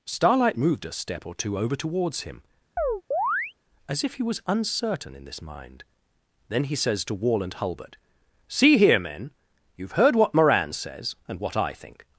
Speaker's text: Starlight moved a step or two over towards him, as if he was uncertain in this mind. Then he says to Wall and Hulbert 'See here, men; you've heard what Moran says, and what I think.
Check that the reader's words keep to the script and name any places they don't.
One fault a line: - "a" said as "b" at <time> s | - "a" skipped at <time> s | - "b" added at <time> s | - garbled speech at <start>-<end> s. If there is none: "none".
none